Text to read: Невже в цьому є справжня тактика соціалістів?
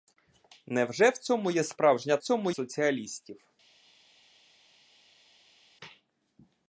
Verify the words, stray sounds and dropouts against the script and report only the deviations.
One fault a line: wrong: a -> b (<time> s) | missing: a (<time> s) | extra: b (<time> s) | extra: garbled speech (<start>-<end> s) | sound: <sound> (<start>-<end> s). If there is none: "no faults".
wrong: тактика -> цьому (2.2 s)